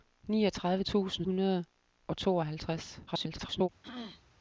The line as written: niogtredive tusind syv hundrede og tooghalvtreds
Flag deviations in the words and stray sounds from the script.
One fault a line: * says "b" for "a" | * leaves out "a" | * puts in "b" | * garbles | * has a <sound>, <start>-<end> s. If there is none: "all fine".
* leaves out "syv"
* garbles
* has a throat clearing, 3.8-4.2 s